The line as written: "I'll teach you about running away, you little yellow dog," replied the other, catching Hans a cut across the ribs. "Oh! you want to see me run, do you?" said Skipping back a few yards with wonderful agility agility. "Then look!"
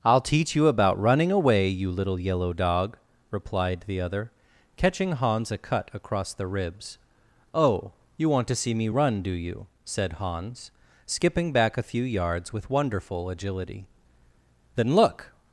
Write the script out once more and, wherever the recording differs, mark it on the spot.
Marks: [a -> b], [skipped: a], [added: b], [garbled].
"I'll teach you about running away, you little yellow dog," replied the other, catching Hans a cut across the ribs. "Oh! you want to see me run, do you?" said [added: Hans] Skipping back a few yards with wonderful agility [skipped: agility.] "Then look!"